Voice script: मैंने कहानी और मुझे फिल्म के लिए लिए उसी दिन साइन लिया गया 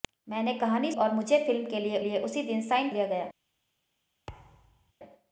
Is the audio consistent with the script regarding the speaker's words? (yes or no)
yes